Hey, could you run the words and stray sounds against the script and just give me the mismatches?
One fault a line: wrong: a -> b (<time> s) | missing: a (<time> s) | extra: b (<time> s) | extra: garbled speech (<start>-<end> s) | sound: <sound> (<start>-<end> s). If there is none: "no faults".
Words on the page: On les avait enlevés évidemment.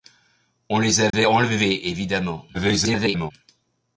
sound: dropout (1.1-1.1 s)
extra: garbled speech (2.5-3.3 s)